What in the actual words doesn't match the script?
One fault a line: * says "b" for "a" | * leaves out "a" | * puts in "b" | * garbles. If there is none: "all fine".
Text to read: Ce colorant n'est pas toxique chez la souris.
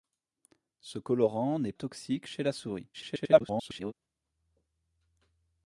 * leaves out "pas"
* garbles